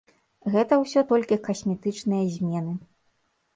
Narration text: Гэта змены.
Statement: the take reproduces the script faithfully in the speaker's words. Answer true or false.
false